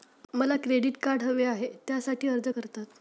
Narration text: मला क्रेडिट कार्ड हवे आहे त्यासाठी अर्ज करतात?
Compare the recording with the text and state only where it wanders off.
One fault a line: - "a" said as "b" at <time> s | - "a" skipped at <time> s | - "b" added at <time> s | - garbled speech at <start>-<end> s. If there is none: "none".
none